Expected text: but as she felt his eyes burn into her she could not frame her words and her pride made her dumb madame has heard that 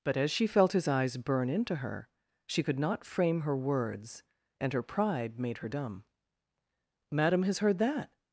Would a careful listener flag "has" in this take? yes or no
no